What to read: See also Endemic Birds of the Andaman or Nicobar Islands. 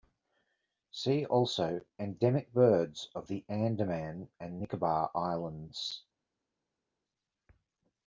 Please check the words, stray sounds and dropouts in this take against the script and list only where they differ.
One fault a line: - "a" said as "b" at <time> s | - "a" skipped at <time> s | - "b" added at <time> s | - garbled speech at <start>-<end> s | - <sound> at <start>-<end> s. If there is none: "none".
- "or" said as "and" at 4.4 s